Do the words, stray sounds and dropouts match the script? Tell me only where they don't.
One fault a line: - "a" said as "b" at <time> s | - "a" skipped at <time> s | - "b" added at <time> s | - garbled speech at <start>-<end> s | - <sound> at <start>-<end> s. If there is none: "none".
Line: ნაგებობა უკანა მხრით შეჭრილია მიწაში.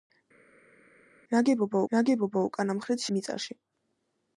- "ნაგებობა" added at 1.9 s
- "შეჭრილია" skipped at 3.1 s